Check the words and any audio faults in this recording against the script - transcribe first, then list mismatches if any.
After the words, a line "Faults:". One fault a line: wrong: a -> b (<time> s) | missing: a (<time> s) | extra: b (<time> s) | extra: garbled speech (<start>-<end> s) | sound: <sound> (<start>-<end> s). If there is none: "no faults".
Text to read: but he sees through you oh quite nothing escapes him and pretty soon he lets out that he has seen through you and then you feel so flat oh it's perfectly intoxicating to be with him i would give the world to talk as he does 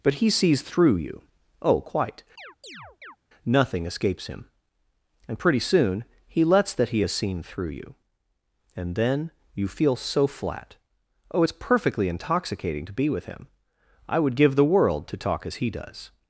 but he sees through you oh quite nothing escapes him and pretty soon he lets that he has seen through you and then you feel so flat oh it's perfectly intoxicating to be with him i would give the world to talk as he does
Faults:
sound: chirp (2.4-3.2 s)
missing: out (6.7 s)